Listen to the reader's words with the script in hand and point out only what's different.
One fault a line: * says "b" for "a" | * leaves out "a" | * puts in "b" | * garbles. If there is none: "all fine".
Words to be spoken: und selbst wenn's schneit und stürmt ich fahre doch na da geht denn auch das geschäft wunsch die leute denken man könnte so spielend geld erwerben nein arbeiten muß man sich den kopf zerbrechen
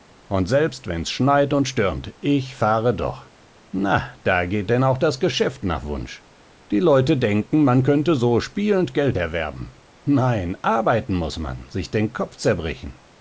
* puts in "nach"